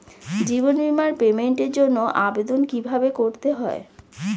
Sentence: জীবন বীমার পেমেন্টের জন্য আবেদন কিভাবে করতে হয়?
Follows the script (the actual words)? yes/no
yes